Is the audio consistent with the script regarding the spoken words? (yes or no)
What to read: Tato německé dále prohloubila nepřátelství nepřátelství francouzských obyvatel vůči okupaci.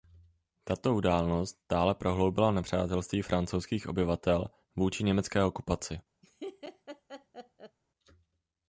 no